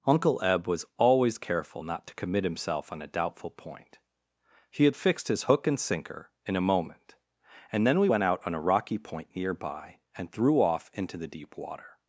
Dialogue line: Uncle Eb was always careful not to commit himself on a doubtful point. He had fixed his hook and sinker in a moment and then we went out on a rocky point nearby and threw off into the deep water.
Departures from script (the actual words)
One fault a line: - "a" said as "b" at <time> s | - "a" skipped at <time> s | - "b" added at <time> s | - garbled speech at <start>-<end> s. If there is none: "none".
none